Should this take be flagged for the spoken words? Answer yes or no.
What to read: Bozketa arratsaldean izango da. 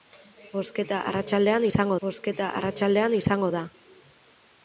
yes